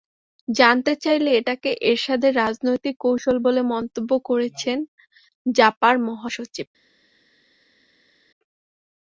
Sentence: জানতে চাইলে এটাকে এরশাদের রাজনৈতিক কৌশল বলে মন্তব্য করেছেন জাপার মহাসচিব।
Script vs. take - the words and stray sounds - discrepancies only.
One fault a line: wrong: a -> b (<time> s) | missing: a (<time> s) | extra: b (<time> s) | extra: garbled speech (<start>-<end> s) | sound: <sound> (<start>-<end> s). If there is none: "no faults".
no faults